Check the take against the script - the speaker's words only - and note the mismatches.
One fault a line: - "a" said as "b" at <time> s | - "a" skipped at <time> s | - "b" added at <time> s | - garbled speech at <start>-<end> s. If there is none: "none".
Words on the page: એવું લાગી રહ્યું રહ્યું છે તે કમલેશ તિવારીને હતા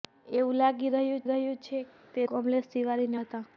none